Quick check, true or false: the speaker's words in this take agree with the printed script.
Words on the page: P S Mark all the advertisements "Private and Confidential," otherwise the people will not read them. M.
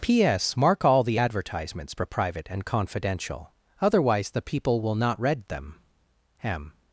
false